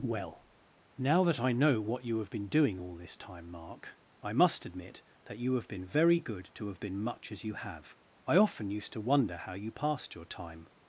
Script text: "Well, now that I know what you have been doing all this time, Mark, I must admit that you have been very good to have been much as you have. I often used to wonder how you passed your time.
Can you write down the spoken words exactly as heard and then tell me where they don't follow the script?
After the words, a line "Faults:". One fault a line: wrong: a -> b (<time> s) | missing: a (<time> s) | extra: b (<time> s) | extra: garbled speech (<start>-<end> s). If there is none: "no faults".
"Well, now that I know what you have been doing all this time, Mark, I must admit that you have been very good to have been much as you have. I often used to wonder how you passed your time.
Faults:
no faults